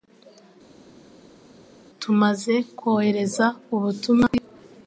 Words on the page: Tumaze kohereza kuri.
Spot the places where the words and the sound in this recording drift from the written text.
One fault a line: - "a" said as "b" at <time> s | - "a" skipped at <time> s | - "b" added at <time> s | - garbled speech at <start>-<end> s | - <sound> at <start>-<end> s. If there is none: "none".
- "ubutumwa" added at 3.7 s